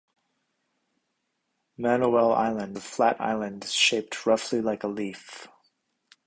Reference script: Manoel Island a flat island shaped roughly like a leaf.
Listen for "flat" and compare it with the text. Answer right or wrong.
right